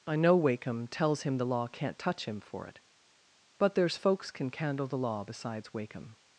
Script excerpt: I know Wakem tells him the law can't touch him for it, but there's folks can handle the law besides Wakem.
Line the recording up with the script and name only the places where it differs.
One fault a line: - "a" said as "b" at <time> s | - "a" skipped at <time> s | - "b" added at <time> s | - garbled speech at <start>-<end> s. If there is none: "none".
- "handle" said as "candle" at 4.5 s